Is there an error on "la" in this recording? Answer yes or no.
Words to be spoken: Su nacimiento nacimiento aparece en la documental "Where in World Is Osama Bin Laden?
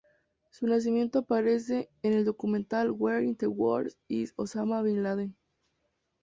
yes